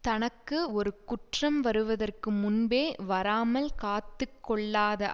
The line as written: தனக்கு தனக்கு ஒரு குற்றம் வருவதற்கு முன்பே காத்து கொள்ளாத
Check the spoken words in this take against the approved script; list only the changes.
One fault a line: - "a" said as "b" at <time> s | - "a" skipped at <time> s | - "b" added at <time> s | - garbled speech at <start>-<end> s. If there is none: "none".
- "தனக்கு" skipped at 0.6 s
- "வராமல்" added at 3.0 s